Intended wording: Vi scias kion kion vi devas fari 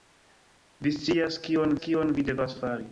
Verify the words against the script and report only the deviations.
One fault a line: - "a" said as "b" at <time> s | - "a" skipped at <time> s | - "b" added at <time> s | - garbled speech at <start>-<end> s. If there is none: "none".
none